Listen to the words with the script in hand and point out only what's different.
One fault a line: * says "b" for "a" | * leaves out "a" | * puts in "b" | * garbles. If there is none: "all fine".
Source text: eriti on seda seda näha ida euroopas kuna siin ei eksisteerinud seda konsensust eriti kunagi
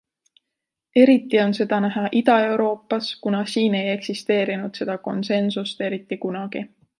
* leaves out "seda"